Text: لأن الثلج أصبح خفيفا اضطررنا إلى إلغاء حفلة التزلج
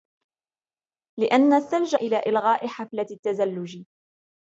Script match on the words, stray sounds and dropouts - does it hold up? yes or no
no